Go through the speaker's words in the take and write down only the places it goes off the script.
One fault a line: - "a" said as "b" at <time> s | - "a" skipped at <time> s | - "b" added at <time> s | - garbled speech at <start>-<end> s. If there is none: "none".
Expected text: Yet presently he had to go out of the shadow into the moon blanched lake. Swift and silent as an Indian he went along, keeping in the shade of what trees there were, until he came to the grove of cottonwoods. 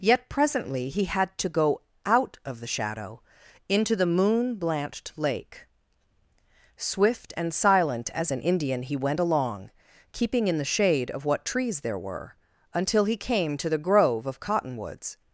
none